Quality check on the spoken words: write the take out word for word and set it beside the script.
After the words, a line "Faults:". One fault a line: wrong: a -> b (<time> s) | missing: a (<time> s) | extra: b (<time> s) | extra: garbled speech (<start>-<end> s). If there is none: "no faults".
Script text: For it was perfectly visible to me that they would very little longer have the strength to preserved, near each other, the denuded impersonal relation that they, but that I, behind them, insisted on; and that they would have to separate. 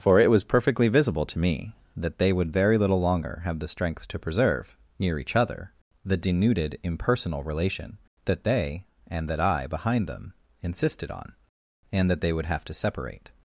For it was perfectly visible to me that they would very little longer have the strength to preserve, near each other, the denuded impersonal relation that they, and that I, behind them, insisted on; and that they would have to separate.
Faults:
wrong: preserved -> preserve (4.2 s)
wrong: but -> and (9.1 s)